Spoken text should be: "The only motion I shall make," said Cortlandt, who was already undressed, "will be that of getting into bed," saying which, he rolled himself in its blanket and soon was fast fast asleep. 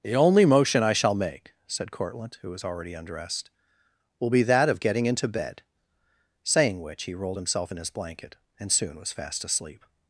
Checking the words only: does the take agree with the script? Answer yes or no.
no